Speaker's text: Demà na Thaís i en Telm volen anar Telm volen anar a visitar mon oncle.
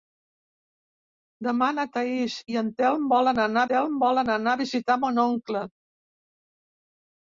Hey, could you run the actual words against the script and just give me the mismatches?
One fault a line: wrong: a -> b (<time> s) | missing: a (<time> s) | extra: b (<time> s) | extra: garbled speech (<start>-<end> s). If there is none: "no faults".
no faults